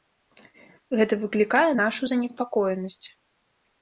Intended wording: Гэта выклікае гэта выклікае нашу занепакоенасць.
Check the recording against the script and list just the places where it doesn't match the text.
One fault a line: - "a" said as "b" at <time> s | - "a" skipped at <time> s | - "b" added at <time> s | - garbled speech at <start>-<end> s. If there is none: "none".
- "гэта выклікае" skipped at 1.7 s